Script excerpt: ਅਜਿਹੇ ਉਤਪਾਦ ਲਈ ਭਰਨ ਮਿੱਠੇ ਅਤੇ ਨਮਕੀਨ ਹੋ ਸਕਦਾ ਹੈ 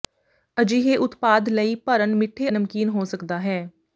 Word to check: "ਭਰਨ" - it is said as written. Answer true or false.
true